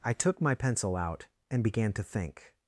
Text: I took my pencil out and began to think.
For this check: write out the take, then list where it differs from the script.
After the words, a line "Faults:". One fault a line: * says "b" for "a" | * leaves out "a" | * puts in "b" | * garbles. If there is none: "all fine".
I took my pencil out and began to think.
Faults:
all fine